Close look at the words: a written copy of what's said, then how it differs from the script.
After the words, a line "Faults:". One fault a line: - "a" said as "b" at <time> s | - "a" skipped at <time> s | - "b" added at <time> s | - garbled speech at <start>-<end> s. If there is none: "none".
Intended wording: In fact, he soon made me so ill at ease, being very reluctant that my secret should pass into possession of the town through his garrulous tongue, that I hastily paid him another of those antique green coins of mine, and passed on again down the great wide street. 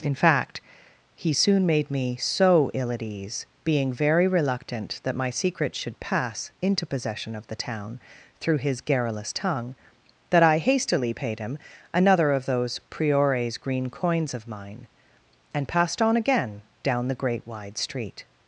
In fact, he soon made me so ill at ease, being very reluctant that my secret should pass into possession of the town through his garrulous tongue, that I hastily paid him another of those priores green coins of mine, and passed on again down the great wide street.
Faults:
- "antique" said as "priores" at 12.9 s